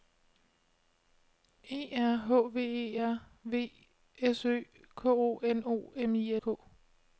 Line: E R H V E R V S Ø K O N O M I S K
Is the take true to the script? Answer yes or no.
no